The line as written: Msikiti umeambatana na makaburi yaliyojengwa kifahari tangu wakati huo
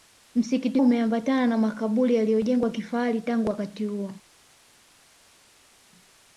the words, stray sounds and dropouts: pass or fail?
pass